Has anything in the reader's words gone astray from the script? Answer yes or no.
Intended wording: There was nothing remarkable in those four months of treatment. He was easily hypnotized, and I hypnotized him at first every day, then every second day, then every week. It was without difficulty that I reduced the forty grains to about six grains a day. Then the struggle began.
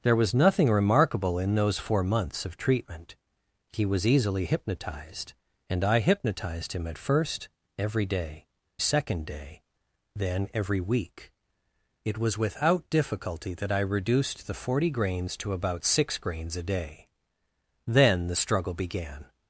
yes